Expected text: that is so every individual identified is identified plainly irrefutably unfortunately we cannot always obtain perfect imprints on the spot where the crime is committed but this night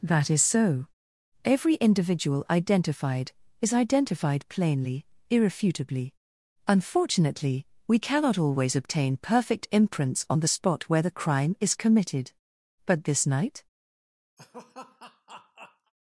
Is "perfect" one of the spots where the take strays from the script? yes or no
no